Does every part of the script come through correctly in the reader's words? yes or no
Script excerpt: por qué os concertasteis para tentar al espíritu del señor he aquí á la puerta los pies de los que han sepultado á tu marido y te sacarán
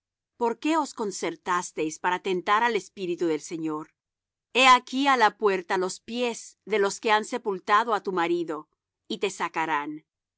yes